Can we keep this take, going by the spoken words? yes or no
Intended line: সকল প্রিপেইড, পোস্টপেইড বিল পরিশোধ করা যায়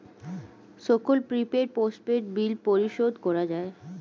yes